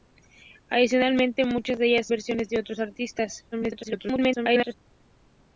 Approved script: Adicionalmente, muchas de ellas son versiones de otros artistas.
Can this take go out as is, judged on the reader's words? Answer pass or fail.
fail